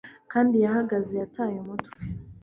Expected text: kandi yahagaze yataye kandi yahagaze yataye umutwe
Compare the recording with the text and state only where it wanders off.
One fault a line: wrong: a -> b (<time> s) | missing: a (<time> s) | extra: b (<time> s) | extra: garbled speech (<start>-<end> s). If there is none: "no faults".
missing: kandi yahagaze yataye (1.6 s)